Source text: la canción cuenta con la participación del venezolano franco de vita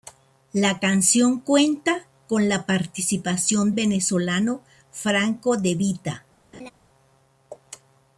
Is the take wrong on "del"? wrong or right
wrong